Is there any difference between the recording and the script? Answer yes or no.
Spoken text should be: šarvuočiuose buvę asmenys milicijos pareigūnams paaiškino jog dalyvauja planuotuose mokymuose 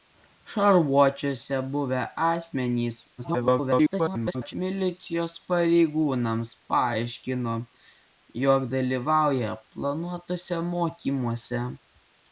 yes